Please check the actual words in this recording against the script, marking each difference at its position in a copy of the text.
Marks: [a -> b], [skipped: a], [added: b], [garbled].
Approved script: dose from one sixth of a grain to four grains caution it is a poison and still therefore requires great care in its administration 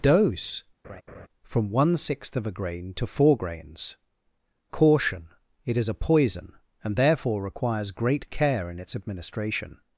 dose from one sixth of a grain to four grains caution it is a poison and [skipped: still] therefore requires great care in its administration